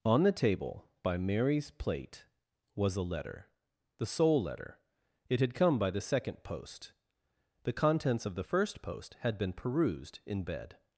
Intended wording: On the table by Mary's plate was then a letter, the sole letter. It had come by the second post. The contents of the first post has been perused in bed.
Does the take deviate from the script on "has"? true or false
true